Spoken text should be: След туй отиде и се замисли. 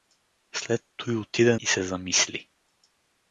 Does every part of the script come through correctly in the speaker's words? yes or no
yes